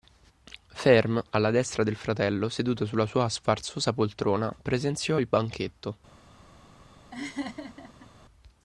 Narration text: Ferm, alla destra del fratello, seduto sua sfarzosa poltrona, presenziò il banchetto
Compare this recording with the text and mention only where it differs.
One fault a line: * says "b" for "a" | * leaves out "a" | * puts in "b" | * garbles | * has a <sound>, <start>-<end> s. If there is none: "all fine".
* puts in "sulla"
* has a laugh, 7.1-8.1 s